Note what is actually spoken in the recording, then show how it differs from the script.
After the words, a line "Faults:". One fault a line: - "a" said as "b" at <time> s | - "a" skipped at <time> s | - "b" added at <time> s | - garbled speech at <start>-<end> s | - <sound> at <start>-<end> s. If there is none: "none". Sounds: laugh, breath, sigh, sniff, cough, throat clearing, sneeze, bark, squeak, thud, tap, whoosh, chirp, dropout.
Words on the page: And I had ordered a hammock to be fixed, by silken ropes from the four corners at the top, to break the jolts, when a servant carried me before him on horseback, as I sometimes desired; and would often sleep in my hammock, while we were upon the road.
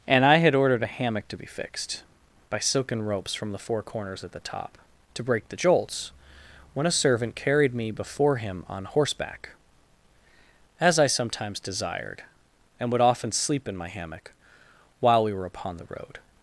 And I had ordered a hammock to be fixed, by silken ropes from the four corners at the top, to break the jolts, when a servant carried me before him on horseback, as I sometimes desired; and would often sleep in my hammock, while we were upon the road.
Faults:
none